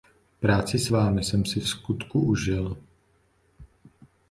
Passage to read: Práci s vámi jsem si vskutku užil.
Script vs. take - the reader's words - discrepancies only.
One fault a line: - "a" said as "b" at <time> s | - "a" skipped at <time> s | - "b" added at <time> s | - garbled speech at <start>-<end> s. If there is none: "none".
none